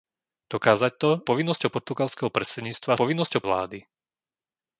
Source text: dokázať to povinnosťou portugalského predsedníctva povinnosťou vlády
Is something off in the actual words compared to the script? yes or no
no